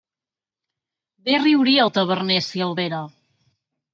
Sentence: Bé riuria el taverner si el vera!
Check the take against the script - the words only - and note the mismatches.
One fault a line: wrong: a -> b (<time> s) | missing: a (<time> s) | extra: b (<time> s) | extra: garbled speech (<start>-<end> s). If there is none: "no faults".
no faults